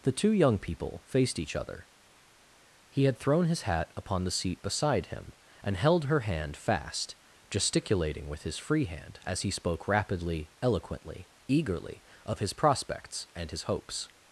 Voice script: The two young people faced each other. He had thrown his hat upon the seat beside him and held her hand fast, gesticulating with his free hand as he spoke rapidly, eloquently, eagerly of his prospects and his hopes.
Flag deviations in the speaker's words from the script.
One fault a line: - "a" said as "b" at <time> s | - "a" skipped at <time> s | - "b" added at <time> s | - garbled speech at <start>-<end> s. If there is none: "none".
none